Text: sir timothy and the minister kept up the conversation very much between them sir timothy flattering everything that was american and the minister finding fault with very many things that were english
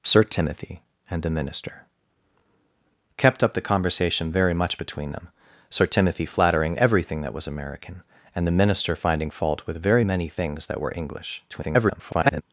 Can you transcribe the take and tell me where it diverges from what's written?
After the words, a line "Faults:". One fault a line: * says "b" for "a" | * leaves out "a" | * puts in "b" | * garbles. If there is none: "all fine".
sir timothy and the minister kept up the conversation very much between them sir timothy flattering everything that was american and the minister finding fault with very many things that were english [garbled]
Faults:
* garbles